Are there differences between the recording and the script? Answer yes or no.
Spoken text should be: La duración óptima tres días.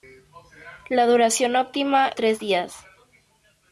no